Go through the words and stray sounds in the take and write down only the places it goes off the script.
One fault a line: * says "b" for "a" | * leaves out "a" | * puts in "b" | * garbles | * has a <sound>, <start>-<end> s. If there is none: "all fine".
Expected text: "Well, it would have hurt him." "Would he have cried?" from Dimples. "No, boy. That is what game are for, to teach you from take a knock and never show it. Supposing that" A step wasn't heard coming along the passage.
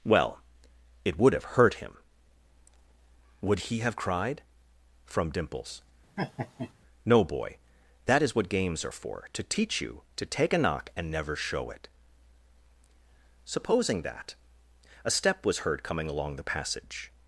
* has a laugh, 6.2-6.7 s
* says "games" for "game"
* says "to" for "from"
* says "was" for "wasn't"